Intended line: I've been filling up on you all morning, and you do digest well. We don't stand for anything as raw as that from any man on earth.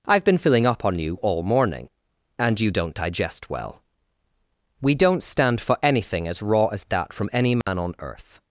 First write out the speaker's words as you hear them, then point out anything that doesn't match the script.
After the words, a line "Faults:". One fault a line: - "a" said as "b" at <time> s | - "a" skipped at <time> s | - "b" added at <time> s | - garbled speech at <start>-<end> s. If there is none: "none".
I've been filling up on you all morning, and you don't digest well. We don't stand for anything as raw as that from any man on earth.
Faults:
- "do" said as "don't" at 2.7 s